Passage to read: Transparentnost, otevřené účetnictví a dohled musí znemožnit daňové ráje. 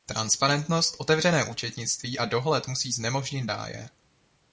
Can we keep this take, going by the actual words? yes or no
no